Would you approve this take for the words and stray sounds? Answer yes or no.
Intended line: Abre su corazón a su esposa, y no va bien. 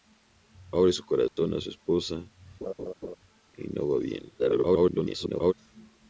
no